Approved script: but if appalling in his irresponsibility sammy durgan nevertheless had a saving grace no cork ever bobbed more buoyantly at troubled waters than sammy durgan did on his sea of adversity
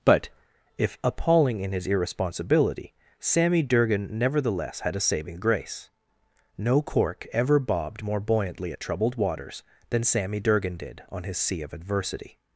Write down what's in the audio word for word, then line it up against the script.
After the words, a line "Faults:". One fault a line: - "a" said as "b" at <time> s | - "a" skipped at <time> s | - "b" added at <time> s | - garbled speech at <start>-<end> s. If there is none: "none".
but if appalling in his irresponsibility sammy durgan nevertheless had a saving grace no cork ever bobbed more buoyantly at troubled waters than sammy durgan did on his sea of adversity
Faults:
none